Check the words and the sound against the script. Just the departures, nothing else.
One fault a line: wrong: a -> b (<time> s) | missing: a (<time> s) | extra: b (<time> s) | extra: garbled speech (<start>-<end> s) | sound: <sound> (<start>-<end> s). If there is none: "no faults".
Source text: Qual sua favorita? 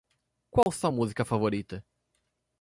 sound: dropout (0.6-0.7 s)
extra: música (0.9 s)